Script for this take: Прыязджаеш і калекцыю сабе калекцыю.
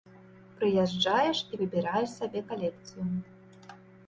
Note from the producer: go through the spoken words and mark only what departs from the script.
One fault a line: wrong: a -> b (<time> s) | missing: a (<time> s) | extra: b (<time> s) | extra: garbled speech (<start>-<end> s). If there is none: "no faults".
wrong: калекцыю -> выбіраеш (1.6 s)